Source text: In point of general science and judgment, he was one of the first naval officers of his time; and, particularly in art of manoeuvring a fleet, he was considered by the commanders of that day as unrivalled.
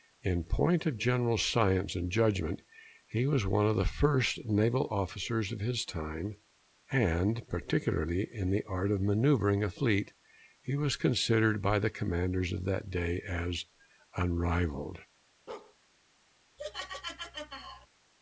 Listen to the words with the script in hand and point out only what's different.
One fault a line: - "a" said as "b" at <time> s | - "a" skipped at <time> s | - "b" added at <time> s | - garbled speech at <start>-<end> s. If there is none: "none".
- "the" added at 8.5 s